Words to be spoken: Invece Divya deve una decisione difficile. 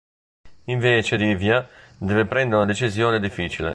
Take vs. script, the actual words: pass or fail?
fail